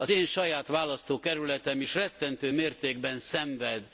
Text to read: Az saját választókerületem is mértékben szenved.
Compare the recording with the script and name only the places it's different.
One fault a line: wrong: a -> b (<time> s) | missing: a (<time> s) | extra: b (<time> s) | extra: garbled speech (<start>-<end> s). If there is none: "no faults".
extra: én (0.1 s)
extra: rettentő (1.9 s)